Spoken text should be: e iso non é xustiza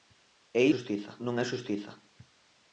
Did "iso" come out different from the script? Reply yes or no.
yes